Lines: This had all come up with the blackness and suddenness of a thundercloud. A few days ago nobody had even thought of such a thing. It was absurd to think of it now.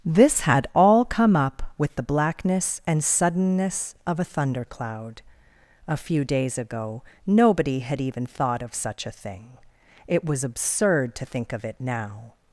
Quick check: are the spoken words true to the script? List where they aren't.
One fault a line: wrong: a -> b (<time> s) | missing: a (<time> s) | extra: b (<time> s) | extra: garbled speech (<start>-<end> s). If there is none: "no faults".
no faults